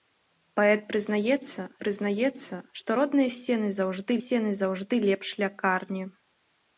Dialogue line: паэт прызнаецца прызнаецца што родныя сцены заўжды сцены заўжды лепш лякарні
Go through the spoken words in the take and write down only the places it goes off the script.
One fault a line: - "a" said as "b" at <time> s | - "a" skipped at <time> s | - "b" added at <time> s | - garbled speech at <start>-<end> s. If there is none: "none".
none